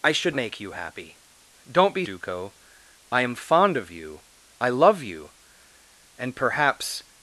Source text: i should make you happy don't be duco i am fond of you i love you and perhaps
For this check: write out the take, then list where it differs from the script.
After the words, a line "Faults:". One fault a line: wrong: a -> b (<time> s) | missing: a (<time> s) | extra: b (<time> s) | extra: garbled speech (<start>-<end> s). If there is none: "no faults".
i should make you happy don't be duco i am fond of you i love you and perhaps
Faults:
no faults